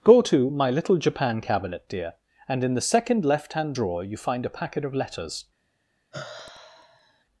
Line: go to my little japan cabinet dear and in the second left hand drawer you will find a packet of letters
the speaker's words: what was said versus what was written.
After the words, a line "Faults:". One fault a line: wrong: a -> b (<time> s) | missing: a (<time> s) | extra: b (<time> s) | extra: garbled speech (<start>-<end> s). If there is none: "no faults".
go to my little japan cabinet dear and in the second left hand drawer you find a packet of letters
Faults:
missing: will (4.1 s)